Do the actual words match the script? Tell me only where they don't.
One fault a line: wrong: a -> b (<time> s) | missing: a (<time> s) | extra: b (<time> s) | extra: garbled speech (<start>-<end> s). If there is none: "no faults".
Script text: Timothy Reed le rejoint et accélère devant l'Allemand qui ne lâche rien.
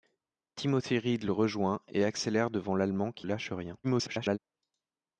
missing: ne (3.3 s)
extra: garbled speech (3.8-4.4 s)